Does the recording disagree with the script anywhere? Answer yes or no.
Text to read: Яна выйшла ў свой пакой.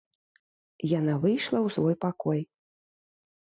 no